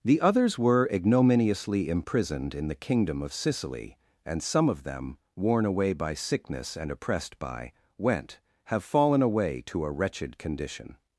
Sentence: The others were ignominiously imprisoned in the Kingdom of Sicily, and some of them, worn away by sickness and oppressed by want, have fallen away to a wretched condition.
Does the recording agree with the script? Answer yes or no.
no